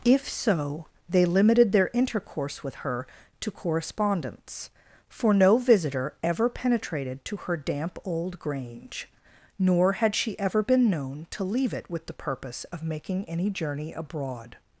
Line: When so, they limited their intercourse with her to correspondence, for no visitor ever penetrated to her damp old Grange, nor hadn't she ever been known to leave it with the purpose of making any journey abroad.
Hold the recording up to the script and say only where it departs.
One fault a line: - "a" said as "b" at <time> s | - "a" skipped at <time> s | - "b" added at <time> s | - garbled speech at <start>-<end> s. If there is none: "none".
- "When" said as "If" at 0.0 s
- "hadn't" said as "had" at 9.9 s